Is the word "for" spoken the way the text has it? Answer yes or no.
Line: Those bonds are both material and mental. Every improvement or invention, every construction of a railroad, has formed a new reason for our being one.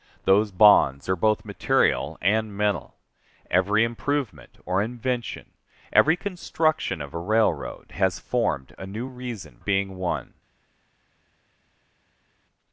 no